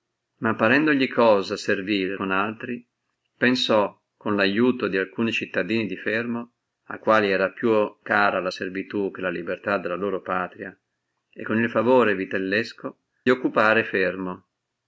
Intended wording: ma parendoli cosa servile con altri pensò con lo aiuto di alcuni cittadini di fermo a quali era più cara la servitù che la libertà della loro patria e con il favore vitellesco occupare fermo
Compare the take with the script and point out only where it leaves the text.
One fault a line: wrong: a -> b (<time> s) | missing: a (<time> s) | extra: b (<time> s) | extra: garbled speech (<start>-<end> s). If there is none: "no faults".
no faults